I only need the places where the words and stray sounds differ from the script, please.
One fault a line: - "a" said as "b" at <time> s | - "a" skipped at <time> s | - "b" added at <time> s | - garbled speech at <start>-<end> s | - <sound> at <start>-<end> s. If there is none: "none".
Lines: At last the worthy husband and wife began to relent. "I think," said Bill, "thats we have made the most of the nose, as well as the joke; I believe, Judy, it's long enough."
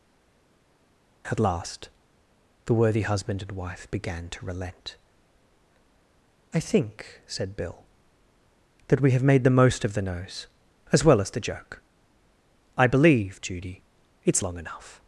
- "thats" said as "that" at 8.9 s